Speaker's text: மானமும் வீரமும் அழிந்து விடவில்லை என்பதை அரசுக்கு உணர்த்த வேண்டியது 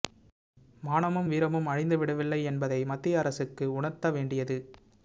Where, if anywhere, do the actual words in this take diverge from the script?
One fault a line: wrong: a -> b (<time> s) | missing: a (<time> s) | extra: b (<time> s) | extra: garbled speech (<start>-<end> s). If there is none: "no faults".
extra: மத்திய (2.9 s)